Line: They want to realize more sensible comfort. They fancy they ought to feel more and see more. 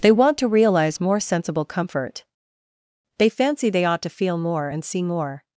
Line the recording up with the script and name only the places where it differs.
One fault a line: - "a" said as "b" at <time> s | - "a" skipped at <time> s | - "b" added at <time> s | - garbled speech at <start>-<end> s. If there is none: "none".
none